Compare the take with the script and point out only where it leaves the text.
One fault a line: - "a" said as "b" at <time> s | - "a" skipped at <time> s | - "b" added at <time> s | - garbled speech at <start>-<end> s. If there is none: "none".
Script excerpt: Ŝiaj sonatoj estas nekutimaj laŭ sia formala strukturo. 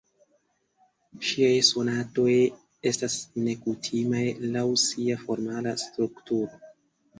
none